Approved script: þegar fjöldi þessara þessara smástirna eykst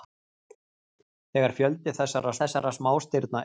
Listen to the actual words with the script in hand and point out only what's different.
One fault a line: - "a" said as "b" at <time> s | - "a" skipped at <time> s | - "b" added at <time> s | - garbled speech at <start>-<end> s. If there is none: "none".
none